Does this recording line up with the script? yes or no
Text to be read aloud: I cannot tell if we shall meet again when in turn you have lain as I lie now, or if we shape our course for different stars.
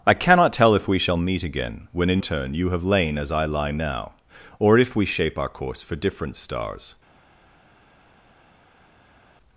yes